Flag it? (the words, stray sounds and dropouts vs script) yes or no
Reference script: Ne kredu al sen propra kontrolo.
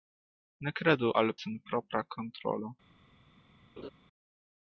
yes